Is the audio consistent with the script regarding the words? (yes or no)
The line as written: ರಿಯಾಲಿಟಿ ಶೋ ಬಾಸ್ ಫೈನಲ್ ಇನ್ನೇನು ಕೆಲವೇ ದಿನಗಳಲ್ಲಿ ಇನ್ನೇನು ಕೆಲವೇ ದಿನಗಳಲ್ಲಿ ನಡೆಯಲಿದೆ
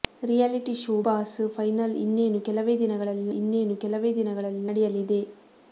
yes